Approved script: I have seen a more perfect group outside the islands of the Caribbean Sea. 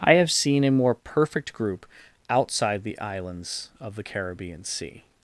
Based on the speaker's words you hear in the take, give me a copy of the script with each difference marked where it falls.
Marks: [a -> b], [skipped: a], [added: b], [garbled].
I have seen a more perfect group outside the islands of the Caribbean Sea.